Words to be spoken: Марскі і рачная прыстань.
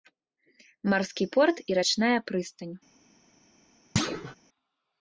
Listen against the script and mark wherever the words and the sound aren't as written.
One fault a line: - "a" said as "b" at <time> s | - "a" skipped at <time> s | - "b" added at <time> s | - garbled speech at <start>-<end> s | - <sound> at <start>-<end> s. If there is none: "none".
- "порт" added at 1.3 s
- thud at 4.0-4.4 s